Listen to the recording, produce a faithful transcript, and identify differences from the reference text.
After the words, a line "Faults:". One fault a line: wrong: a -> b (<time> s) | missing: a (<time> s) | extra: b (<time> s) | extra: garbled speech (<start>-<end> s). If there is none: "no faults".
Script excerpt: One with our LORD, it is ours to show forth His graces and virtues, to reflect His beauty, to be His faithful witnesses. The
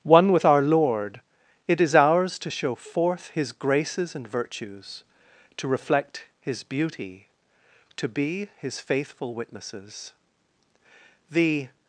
One with our LORD, it is ours to show forth His graces and virtues, to reflect His beauty, to be His faithful witnesses. The
Faults:
no faults